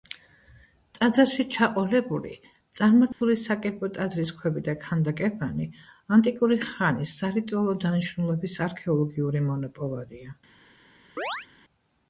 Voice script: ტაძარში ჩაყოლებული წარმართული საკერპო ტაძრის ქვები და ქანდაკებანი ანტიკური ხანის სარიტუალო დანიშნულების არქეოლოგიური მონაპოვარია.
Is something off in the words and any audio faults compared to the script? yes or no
yes